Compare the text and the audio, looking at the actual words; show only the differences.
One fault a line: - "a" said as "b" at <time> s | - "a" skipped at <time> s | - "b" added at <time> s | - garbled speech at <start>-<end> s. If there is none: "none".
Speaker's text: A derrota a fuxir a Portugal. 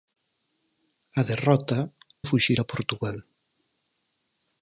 none